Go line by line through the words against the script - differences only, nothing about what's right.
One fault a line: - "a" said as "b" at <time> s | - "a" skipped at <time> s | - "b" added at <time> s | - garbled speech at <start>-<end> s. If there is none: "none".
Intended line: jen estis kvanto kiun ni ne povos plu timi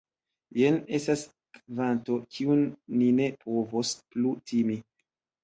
- "estis" said as "estas" at 1.0 s